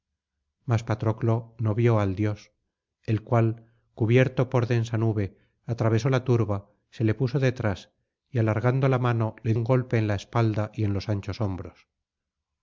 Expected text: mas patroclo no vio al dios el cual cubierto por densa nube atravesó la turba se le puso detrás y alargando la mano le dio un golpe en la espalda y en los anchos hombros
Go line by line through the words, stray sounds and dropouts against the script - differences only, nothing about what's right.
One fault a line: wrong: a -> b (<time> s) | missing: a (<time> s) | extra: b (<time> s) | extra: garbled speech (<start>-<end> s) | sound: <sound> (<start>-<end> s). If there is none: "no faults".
missing: dio (9.5 s)